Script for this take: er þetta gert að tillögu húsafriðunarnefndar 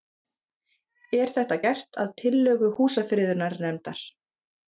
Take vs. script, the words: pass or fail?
pass